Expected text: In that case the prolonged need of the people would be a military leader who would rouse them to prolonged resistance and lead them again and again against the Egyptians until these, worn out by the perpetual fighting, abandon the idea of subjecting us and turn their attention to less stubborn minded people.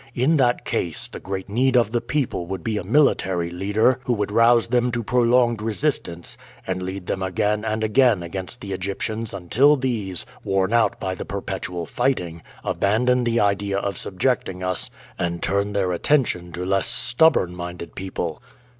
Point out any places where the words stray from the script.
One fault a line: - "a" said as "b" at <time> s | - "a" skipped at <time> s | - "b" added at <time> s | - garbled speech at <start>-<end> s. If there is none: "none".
- "prolonged" said as "great" at 1.2 s